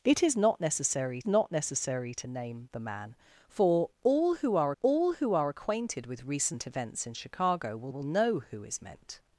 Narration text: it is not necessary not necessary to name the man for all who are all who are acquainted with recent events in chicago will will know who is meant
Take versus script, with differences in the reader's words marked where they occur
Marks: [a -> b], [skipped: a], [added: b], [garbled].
it is not necessary not necessary to name the man for all who are all who are acquainted with recent events in chicago will will know who is meant